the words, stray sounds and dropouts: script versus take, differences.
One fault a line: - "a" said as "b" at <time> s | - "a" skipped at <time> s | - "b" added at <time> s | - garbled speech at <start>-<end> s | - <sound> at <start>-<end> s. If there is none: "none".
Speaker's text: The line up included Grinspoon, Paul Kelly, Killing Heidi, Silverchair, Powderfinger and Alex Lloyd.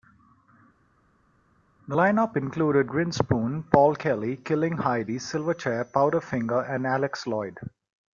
none